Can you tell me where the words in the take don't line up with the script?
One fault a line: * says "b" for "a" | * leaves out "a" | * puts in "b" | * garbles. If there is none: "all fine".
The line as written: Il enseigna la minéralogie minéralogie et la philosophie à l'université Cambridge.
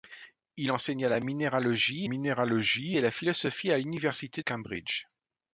all fine